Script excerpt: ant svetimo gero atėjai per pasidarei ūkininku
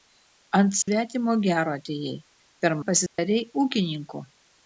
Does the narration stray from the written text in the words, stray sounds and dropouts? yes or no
yes